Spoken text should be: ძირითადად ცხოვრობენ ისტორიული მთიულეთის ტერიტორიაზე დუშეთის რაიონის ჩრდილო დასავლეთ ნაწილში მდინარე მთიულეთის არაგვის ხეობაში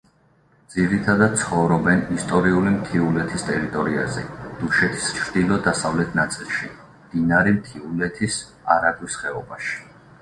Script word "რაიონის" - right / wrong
wrong